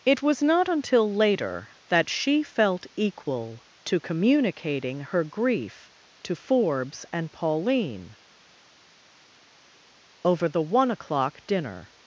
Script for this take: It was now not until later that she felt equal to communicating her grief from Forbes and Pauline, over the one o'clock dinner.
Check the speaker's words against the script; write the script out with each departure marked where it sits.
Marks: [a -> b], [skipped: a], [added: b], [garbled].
It was [skipped: now] not until later that she felt equal to communicating her grief [from -> to] Forbes and Pauline, over the one o'clock dinner.